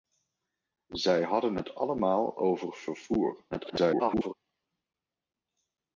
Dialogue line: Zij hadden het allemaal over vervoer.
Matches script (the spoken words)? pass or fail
fail